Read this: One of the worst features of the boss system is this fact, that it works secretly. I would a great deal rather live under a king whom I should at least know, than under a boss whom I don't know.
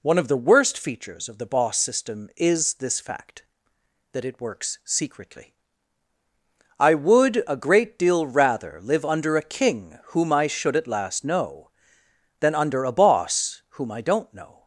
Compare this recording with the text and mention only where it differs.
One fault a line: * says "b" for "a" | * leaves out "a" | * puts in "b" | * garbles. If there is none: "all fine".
* says "last" for "least"